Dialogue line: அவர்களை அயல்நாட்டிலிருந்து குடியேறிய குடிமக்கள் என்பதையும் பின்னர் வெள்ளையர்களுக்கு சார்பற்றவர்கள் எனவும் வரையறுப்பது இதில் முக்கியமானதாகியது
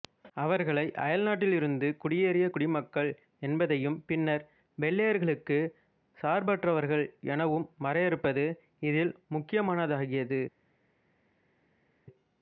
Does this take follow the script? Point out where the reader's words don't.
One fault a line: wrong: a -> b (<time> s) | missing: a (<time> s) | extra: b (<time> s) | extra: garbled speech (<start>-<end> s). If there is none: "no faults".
no faults